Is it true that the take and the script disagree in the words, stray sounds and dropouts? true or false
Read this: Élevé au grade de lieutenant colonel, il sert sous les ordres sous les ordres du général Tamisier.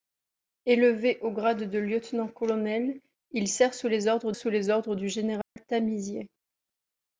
true